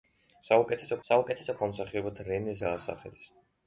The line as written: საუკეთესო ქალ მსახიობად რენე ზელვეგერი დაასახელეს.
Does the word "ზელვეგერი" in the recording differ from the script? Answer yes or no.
yes